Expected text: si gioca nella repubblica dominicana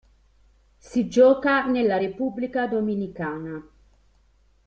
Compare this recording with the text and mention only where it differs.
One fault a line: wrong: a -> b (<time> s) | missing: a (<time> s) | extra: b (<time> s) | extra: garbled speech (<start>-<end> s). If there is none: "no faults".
no faults